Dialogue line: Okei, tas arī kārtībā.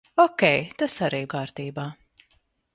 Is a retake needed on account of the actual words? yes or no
no